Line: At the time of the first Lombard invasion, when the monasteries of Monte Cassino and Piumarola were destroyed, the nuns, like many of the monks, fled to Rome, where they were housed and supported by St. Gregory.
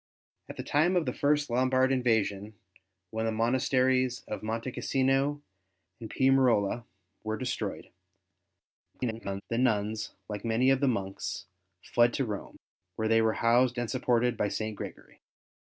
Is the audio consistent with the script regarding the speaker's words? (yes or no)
no